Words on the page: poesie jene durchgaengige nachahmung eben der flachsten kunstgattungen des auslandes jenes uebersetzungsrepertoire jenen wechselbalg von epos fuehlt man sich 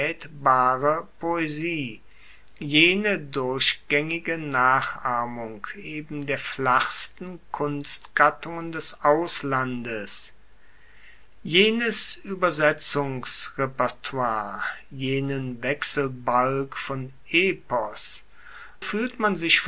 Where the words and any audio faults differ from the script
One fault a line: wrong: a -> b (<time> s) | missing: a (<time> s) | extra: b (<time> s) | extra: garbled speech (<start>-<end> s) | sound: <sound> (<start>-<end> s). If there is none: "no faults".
no faults